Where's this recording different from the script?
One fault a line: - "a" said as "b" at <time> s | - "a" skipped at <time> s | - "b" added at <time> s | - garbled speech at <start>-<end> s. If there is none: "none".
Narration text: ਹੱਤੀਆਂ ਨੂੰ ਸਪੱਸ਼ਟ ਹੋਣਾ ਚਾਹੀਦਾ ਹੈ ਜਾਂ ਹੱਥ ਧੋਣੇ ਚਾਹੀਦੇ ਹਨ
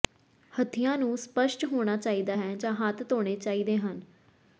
none